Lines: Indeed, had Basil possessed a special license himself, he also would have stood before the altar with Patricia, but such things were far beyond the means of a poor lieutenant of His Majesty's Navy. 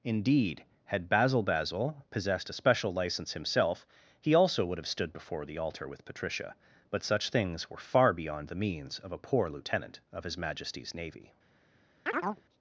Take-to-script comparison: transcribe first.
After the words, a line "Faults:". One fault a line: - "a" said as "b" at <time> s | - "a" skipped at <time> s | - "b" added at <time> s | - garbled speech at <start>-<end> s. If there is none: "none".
Indeed, had Basil Basil possessed a special license himself, he also would have stood before the altar with Patricia, but such things were far beyond the means of a poor lieutenant of His Majesty's Navy.
Faults:
- "Basil" added at 1.4 s